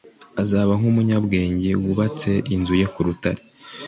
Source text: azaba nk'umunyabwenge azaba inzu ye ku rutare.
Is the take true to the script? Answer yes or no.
no